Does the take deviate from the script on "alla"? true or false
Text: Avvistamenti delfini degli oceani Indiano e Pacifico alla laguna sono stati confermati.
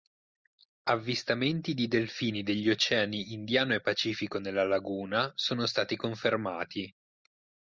true